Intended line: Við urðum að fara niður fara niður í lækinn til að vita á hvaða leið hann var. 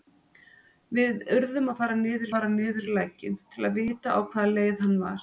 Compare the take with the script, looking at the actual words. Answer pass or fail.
pass